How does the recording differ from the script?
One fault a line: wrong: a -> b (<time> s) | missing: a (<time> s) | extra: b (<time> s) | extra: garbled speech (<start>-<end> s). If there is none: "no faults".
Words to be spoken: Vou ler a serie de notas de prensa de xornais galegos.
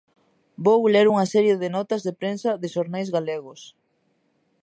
wrong: a -> unha (1.1 s)